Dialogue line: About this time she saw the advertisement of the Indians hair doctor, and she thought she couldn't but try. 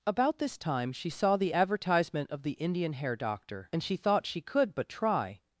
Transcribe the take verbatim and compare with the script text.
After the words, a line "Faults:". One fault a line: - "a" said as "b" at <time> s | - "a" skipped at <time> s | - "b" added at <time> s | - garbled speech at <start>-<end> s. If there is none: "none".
About this time she saw the advertisement of the Indian hair doctor, and she thought she could but try.
Faults:
- "Indians" said as "Indian" at 2.5 s
- "couldn't" said as "could" at 4.4 s